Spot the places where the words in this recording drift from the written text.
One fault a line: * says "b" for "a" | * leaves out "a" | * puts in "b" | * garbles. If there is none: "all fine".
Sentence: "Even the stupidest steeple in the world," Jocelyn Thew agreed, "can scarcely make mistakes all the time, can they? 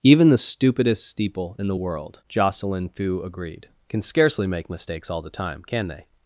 all fine